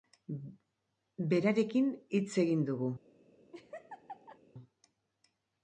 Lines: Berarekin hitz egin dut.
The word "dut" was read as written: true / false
false